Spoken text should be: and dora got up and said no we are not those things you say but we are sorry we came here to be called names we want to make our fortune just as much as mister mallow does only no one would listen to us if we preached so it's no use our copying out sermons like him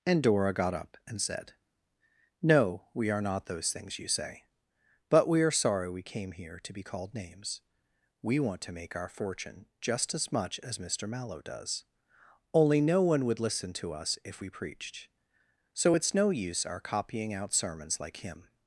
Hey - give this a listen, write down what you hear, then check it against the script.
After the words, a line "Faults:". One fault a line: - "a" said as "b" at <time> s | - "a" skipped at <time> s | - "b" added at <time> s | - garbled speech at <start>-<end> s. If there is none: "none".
and dora got up and said no we are not those things you say but we are sorry we came here to be called names we want to make our fortune just as much as mister mallow does only no one would listen to us if we preached so it's no use our copying out sermons like him
Faults:
none